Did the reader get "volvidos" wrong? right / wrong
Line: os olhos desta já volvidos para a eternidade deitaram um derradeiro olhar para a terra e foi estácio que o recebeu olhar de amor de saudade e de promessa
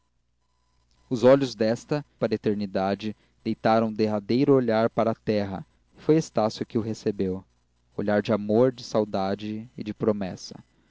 wrong